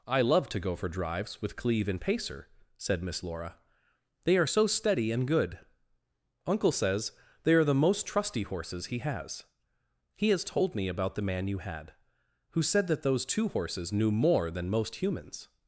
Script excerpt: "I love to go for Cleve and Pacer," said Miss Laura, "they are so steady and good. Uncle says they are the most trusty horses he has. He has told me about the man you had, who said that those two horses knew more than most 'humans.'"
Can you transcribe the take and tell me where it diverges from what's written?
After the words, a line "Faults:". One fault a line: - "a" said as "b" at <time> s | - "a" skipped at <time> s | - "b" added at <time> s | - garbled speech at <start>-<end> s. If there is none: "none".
"I love to go for drives with Cleve and Pacer," said Miss Laura, "they are so steady and good. Uncle says they are the most trusty horses he has. He has told me about the man you had, who said that those two horses knew more than most 'humans.'"
Faults:
- "drives with" added at 0.9 s